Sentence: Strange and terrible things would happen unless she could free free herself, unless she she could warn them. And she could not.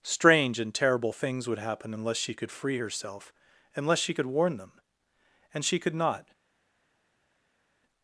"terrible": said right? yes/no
yes